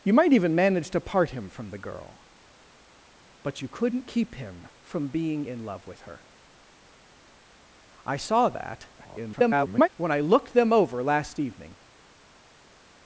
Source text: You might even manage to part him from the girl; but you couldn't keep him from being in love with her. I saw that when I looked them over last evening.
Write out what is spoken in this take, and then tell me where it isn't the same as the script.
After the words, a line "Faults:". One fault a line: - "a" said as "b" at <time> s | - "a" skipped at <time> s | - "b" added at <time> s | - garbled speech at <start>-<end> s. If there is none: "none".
You might even manage to part him from the girl; but you couldn't keep him from being in love with her. I saw that [garbled] when I looked them over last evening.
Faults:
- garbled speech at 9.0-9.9 s